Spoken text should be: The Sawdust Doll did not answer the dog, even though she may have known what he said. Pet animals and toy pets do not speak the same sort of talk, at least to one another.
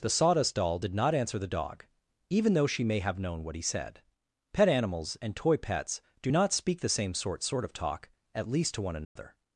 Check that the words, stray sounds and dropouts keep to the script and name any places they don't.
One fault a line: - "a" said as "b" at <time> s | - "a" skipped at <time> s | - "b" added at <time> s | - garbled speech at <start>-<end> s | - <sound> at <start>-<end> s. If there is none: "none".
- "sort" added at 7.4 s
- dropout at 9.0-9.2 s